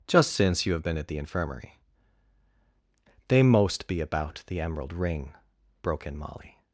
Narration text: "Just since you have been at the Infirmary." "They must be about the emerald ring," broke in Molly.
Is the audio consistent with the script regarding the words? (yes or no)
no